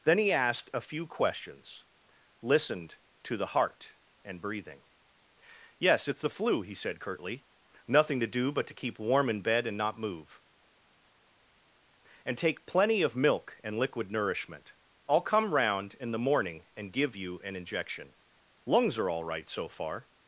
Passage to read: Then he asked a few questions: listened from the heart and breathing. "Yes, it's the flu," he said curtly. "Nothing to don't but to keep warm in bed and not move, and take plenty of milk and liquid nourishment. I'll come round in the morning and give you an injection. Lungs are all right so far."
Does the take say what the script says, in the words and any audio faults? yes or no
no